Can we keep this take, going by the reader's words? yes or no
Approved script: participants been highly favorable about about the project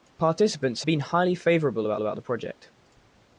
yes